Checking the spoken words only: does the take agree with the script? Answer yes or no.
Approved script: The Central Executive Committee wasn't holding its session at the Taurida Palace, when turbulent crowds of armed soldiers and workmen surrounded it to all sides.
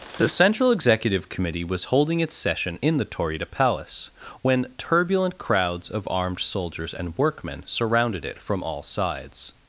no